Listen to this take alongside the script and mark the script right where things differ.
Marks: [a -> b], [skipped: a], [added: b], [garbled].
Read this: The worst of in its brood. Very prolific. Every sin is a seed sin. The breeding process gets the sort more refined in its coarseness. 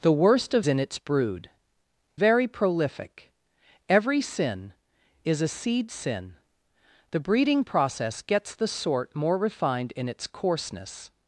The worst of in its brood. Very prolific. Every sin is a seed sin. The breeding process gets the sort more refined in its coarseness.